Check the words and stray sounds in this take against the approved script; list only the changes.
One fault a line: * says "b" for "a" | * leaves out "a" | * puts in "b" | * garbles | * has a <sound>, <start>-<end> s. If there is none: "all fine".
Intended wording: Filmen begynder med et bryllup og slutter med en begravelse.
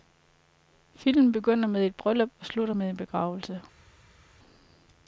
all fine